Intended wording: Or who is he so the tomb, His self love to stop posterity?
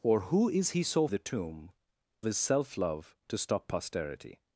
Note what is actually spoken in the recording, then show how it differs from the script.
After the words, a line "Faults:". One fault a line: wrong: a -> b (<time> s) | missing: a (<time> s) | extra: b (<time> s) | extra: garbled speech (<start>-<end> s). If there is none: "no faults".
Or who is he so the tomb, His self love to stop posterity?
Faults:
no faults